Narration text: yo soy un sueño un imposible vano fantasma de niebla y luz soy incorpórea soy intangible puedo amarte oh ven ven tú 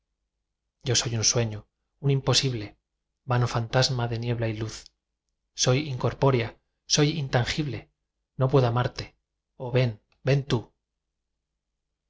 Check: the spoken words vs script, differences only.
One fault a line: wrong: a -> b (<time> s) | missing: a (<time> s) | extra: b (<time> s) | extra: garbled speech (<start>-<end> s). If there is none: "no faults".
extra: no (8.3 s)